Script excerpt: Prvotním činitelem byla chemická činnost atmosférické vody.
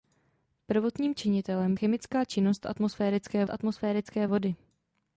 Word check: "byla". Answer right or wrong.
wrong